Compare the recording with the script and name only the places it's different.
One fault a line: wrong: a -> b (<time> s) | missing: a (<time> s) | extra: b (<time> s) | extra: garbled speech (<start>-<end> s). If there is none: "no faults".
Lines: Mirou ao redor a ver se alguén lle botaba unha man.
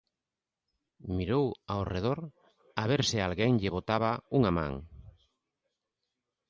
no faults